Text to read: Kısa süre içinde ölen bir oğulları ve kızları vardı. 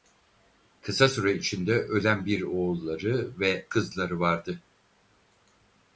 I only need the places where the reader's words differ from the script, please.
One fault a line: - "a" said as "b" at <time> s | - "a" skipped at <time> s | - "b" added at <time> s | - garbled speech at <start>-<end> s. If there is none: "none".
none